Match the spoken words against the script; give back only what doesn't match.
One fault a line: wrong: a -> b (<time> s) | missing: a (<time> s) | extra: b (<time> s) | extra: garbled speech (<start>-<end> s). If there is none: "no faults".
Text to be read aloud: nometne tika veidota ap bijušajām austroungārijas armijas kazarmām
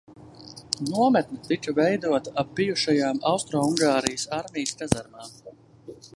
no faults